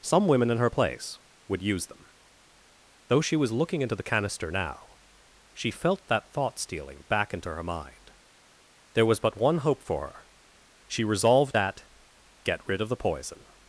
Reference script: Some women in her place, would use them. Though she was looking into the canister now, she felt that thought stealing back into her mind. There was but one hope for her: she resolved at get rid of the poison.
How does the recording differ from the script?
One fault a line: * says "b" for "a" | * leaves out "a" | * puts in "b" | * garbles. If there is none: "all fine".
all fine